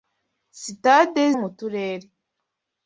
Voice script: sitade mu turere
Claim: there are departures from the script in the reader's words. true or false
false